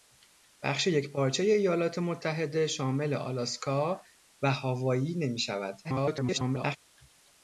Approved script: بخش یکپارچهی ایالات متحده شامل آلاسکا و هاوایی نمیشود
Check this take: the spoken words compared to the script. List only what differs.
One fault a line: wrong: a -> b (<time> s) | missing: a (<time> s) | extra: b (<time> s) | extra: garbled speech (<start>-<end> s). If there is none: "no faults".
extra: garbled speech (5.8-6.8 s)